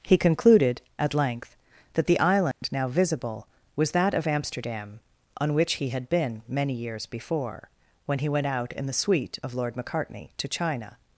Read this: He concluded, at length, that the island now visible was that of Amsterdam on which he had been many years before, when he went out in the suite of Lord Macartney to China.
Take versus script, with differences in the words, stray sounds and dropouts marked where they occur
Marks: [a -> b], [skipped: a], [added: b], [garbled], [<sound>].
He concluded, at length, that the island [dropout] now visible was that of Amsterdam on which he had been many years before, when he went out in the suite of Lord Macartney to China.